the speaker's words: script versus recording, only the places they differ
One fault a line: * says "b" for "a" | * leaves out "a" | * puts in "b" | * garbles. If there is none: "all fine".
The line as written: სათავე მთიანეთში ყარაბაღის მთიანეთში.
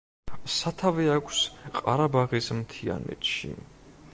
* says "აქვს" for "მთიანეთში"